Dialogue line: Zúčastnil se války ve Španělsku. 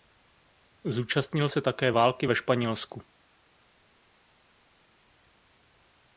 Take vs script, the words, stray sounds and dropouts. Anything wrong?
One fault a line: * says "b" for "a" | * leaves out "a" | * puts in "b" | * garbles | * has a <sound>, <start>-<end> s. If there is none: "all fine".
* puts in "také"